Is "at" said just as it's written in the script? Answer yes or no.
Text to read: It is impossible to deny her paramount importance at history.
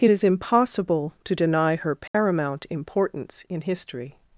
no